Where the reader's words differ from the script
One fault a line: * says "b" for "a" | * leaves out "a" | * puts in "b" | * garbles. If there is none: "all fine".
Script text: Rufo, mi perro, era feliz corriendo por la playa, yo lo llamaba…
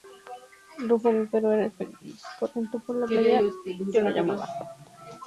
all fine